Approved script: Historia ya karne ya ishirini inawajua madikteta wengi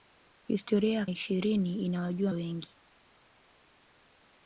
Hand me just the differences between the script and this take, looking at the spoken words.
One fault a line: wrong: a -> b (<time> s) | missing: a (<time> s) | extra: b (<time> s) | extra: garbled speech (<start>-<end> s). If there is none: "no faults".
missing: karne (1.1 s)
missing: madikteta (2.3 s)